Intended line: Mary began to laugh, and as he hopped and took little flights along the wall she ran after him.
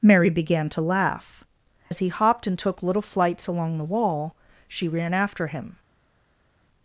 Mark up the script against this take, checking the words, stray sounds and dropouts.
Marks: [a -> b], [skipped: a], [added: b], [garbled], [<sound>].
Mary began to laugh, [skipped: and] as he hopped and took little flights along the wall she ran after him.